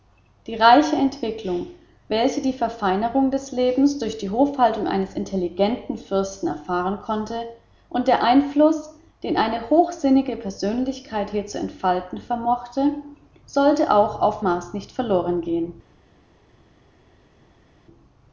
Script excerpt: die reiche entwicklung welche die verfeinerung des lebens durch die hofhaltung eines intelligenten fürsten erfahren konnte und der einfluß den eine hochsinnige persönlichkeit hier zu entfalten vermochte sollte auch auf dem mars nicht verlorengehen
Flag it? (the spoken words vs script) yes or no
yes